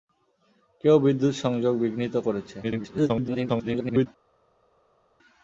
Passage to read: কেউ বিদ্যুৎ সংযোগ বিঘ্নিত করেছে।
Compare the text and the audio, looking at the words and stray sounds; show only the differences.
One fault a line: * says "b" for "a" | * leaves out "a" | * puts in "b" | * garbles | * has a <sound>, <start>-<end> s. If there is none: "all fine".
* garbles